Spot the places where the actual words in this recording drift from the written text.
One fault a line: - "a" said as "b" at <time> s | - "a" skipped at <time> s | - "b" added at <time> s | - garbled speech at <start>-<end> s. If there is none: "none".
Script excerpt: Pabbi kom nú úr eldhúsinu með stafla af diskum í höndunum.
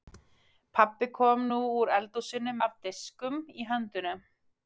- "með stafla" skipped at 2.5 s